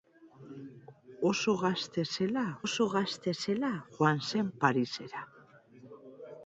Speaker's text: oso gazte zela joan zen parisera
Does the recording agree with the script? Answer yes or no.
no